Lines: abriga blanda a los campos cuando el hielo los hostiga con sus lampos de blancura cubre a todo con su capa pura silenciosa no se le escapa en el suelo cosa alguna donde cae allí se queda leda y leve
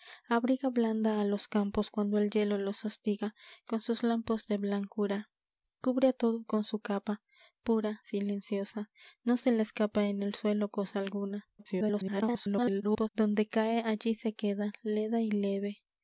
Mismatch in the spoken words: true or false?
true